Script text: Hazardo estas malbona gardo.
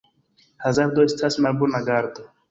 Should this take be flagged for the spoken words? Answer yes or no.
no